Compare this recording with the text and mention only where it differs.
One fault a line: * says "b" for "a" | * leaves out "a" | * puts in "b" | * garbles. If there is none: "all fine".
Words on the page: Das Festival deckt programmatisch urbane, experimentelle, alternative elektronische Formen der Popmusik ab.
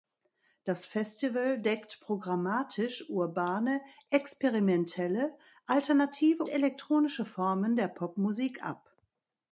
all fine